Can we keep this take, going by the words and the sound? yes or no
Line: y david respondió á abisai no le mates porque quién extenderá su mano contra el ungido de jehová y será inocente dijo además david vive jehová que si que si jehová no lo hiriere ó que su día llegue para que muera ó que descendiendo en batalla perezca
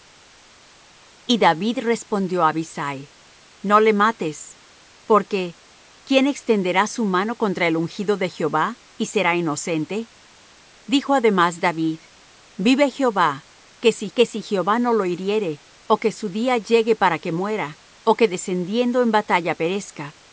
yes